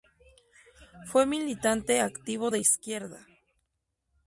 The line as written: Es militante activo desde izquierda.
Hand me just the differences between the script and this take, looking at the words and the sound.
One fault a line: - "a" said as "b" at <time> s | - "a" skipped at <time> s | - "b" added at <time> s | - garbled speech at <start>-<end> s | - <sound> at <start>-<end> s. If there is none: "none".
- "Es" said as "Fue" at 1.1 s
- "desde" said as "de" at 2.5 s